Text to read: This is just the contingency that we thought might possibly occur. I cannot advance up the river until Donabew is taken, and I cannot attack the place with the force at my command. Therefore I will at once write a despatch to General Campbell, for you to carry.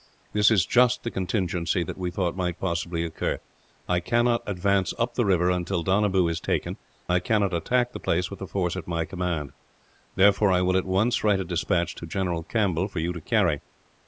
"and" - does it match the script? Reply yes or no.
no